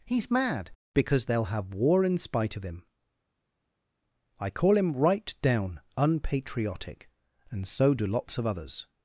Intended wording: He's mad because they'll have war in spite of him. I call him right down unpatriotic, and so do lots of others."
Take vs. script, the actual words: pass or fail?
pass